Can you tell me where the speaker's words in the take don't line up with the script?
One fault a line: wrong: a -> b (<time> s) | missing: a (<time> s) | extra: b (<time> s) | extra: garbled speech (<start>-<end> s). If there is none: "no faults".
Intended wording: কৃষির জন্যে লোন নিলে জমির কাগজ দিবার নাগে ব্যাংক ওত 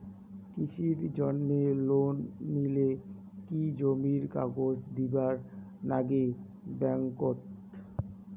extra: কি (3.5 s)